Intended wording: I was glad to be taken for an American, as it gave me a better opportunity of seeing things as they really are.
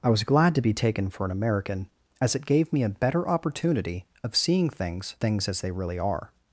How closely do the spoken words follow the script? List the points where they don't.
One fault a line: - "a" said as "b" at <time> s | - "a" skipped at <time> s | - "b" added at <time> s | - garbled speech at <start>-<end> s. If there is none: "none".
- "things" added at 5.2 s